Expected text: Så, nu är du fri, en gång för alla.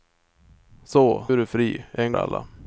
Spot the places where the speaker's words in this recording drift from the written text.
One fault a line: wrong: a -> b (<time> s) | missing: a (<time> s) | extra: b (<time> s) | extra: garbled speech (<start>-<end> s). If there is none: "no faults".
missing: nu (1.3 s)
missing: gång för (2.1 s)